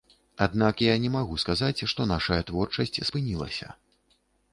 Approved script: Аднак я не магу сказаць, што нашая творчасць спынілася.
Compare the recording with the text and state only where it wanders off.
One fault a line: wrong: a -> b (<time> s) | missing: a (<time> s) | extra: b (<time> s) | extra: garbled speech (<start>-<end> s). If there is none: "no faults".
no faults